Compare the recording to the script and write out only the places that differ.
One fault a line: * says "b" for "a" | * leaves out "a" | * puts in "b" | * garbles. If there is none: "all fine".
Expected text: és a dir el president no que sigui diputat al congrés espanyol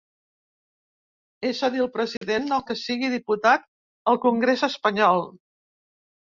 all fine